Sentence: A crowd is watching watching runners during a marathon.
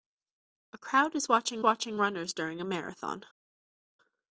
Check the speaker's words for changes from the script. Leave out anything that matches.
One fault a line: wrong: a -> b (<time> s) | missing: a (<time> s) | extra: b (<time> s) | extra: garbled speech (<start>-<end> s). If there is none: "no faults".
no faults